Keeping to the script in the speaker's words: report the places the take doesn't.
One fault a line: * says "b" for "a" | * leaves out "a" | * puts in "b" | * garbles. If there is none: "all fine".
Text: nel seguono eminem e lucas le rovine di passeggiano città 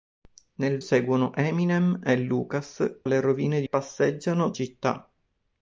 all fine